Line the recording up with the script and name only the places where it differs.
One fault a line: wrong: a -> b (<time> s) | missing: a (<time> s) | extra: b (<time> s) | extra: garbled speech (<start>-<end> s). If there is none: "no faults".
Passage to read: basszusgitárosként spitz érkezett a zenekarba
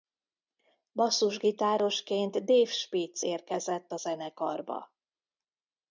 extra: dave (2.4 s)